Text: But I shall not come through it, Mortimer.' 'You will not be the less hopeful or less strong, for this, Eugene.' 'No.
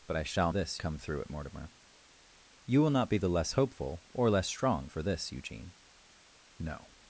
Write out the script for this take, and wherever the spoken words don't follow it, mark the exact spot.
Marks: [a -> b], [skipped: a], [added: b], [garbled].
But I shall [not -> this] come through it, Mortimer.' 'You will not be the less hopeful or less strong, for this, Eugene.' 'No.